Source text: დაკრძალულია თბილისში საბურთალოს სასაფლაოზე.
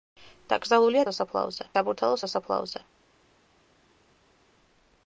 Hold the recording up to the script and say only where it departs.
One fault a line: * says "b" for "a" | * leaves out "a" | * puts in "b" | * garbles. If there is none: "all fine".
* says "სასაფლაოზე" for "თბილისში"